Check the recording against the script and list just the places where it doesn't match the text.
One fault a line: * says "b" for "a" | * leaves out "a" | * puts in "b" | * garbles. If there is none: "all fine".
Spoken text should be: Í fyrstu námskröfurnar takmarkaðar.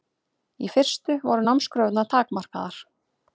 * puts in "voru"